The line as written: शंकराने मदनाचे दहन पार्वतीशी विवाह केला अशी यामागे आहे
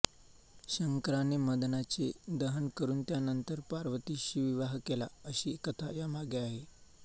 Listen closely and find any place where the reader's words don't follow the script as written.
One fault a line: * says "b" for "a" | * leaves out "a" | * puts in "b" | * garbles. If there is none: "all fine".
* puts in "करून त्यानंतर"
* puts in "कथा"